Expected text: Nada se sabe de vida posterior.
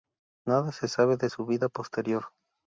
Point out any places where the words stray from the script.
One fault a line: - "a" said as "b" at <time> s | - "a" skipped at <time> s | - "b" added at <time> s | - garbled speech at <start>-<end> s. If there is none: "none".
- "su" added at 1.3 s